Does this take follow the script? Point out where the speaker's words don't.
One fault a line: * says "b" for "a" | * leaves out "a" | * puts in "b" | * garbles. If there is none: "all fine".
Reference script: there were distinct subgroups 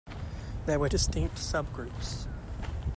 all fine